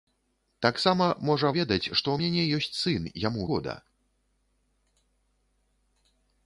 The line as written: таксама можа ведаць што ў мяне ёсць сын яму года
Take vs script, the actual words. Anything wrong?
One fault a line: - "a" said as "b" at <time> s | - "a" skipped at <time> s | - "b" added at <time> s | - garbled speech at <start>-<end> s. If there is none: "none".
none